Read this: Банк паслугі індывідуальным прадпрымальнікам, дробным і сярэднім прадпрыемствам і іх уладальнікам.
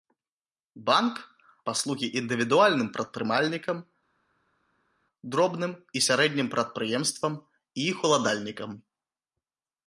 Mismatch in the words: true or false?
false